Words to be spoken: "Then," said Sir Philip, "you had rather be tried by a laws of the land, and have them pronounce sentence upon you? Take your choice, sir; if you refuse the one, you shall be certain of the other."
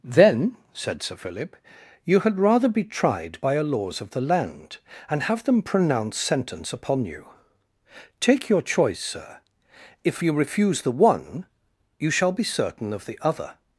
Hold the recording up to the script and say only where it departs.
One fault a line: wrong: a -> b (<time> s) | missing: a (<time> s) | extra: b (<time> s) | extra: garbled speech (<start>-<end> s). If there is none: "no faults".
no faults